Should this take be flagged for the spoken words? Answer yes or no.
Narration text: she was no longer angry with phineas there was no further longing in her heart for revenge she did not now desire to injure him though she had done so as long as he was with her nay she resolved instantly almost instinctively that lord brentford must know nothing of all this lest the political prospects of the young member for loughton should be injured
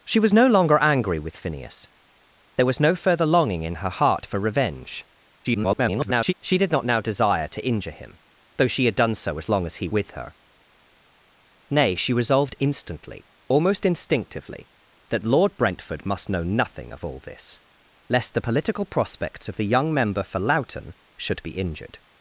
yes